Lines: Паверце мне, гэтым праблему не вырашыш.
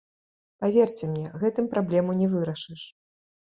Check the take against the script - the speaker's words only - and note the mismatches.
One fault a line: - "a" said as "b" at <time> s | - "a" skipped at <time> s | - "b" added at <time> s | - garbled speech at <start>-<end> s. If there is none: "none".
none